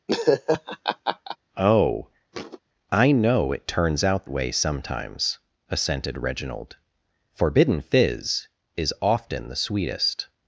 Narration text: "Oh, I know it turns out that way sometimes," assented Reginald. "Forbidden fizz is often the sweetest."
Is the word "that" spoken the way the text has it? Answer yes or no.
no